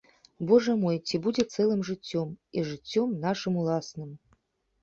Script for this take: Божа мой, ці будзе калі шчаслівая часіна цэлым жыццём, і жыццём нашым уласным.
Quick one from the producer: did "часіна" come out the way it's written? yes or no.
no